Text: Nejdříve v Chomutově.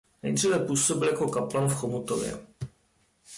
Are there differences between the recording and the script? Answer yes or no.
yes